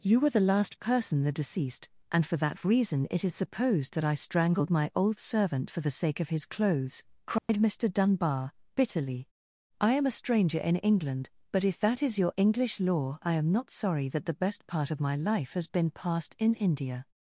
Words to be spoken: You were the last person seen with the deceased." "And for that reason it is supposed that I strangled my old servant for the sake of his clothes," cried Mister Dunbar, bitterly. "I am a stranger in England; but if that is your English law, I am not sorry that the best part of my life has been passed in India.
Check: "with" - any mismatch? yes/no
yes